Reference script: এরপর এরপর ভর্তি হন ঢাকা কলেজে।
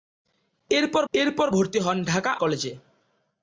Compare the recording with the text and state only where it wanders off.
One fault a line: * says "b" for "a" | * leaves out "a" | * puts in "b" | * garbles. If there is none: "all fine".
all fine